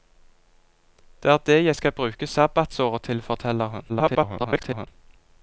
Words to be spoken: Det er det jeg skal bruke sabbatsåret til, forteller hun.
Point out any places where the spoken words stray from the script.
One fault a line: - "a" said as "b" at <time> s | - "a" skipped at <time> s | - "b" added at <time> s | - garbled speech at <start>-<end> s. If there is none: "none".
- garbled speech at 3.9-4.9 s